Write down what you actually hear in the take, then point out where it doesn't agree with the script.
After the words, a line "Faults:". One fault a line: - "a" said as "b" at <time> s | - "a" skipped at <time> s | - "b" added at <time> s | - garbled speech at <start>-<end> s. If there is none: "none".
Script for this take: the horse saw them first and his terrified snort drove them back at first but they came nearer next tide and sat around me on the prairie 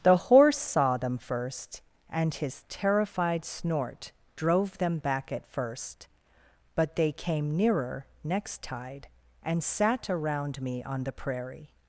the horse saw them first and his terrified snort drove them back at first but they came nearer next tide and sat around me on the prairie
Faults:
none